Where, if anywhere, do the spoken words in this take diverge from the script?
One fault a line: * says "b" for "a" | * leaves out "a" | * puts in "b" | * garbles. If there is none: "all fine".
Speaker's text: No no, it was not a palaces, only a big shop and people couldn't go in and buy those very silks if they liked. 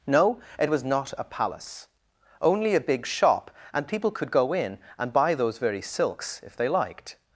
* leaves out "no"
* says "palace" for "palaces"
* says "could" for "couldn't"